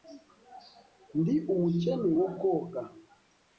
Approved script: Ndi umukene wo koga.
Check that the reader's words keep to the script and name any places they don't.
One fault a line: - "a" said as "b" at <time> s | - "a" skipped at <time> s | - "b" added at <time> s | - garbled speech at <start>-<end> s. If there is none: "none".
none